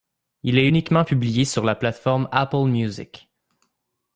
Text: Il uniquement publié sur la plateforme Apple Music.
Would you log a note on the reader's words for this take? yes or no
yes